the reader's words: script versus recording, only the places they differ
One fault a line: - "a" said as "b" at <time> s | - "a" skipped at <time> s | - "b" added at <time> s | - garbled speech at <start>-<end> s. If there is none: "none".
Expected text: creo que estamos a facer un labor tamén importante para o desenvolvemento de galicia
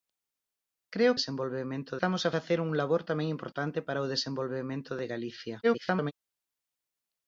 - "que" said as "desenvolvemento" at 1.2 s
- garbled speech at 5.6-6.1 s